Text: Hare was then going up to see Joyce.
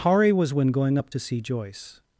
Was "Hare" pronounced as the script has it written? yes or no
yes